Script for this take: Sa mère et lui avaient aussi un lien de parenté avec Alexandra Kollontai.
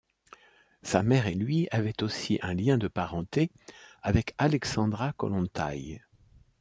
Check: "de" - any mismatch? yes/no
no